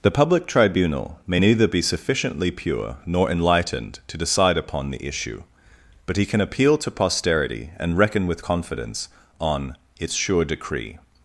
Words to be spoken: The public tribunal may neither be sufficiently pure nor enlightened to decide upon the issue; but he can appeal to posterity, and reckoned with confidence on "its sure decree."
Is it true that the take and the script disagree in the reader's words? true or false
true